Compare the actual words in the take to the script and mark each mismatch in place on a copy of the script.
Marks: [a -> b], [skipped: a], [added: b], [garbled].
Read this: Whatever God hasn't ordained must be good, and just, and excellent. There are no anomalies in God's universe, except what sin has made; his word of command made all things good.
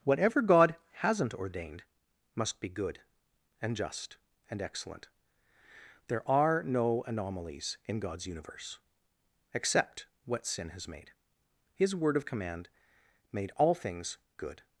Whatever God hasn't ordained must be good, and just, and excellent. There are no anomalies in God's universe, except what sin has made; his word of command made all things good.